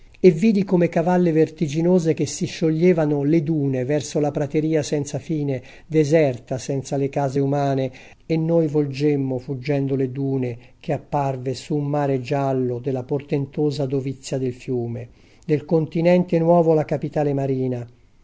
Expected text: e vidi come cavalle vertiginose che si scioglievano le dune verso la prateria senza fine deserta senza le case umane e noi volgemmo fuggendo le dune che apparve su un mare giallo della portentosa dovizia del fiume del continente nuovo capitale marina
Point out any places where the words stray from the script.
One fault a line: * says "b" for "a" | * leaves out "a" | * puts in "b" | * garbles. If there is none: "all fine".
* puts in "la"